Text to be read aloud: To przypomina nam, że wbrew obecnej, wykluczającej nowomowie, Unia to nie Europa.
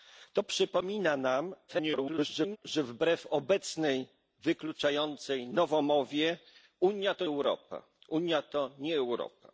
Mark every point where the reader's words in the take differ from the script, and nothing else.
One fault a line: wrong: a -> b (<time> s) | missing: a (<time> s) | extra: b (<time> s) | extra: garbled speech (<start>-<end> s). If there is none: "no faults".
extra: garbled speech (1.7-2.6 s)
missing: nie (7.3 s)